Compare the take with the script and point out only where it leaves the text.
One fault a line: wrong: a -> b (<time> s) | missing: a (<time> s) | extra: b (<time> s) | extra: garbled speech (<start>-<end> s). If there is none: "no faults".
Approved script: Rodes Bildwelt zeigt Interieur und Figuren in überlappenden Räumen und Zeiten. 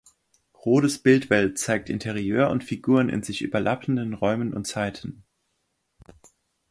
extra: sich (3.2 s)